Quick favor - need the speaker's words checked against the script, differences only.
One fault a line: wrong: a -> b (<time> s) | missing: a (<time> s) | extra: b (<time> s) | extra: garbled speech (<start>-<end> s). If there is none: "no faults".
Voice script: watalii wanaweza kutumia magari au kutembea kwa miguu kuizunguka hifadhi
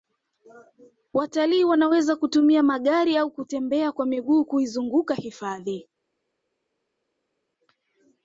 no faults